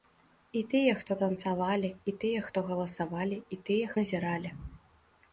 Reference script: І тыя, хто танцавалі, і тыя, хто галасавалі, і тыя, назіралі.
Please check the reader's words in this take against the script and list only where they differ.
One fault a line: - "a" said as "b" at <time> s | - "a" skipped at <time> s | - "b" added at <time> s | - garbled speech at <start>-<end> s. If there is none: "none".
none